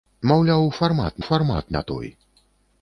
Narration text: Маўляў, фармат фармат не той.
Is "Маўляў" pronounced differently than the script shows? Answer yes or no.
no